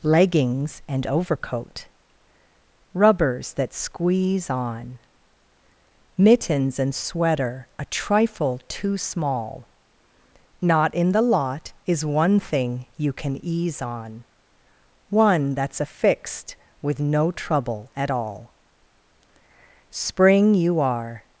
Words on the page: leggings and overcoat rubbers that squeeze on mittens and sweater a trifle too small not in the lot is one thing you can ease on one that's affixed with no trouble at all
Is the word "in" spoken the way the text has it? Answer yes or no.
yes